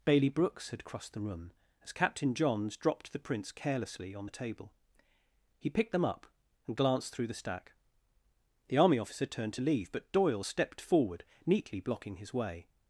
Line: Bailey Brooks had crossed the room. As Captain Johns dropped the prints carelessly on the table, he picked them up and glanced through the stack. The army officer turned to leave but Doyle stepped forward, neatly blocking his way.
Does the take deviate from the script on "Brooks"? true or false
false